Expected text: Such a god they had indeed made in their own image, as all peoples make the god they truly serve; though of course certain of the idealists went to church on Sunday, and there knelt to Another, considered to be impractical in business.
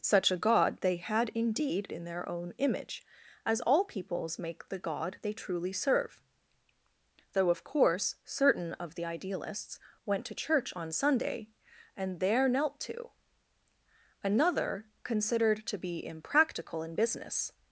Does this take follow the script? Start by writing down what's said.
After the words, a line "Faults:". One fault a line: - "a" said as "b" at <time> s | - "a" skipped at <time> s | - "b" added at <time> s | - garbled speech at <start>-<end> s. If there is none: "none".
Such a god they had indeed in their own image, as all peoples make the god they truly serve; though of course certain of the idealists went to church on Sunday, and there knelt to Another, considered to be impractical in business.
Faults:
- "made" skipped at 1.9 s